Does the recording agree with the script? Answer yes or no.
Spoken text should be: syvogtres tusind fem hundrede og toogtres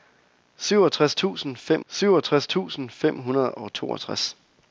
no